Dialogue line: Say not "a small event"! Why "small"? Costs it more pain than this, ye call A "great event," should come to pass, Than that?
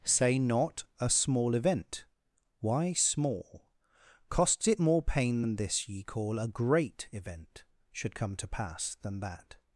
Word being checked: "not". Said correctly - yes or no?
yes